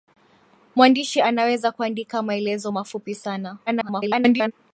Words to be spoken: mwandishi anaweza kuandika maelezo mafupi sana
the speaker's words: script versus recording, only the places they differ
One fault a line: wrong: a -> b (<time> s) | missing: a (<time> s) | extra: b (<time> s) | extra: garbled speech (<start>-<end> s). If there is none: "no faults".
extra: garbled speech (3.7-4.5 s)